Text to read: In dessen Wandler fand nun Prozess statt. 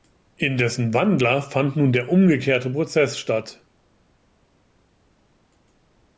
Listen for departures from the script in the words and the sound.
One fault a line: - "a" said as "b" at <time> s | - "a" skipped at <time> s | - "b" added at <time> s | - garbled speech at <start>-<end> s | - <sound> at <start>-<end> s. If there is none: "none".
- "der umgekehrte" added at 1.9 s